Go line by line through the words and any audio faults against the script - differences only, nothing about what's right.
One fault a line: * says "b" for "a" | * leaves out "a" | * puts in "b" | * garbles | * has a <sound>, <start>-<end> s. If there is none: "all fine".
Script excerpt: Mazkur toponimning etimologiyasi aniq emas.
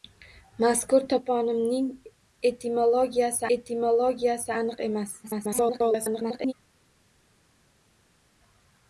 * puts in "etimologiyasi"
* garbles